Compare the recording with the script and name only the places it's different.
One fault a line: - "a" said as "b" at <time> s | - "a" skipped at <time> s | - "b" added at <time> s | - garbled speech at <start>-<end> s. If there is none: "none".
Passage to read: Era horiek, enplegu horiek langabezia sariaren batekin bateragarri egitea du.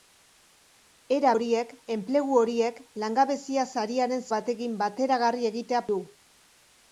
none